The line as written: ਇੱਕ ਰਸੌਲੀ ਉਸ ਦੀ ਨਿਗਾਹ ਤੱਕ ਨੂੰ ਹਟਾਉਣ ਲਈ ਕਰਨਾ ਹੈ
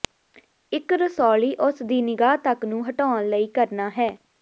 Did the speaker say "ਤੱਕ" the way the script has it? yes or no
yes